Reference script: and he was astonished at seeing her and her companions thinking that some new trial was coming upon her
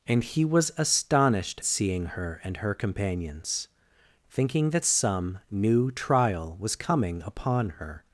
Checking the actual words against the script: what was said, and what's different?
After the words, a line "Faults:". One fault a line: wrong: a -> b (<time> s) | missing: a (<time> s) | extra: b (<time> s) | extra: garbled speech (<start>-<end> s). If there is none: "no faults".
and he was astonished seeing her and her companions thinking that some new trial was coming upon her
Faults:
missing: at (1.6 s)